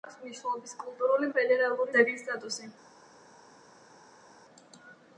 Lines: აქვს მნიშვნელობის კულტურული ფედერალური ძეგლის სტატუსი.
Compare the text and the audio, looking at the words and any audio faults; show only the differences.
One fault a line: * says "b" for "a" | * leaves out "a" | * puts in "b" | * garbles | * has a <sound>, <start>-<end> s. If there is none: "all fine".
all fine